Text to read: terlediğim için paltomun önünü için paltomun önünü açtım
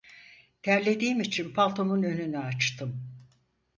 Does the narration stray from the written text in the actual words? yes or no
yes